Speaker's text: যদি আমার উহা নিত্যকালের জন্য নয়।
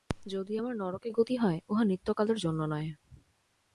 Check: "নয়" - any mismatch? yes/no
no